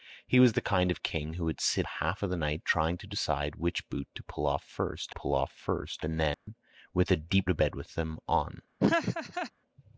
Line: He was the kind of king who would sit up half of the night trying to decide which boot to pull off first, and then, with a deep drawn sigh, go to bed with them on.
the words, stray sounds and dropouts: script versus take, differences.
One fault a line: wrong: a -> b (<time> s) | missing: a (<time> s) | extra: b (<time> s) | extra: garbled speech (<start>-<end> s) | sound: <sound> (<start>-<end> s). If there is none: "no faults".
missing: up (1.9 s)
extra: pull off first (5.1 s)
sound: dropout (6.3-6.5 s)
missing: drawn sigh go (7.5 s)
sound: laugh (8.8-9.5 s)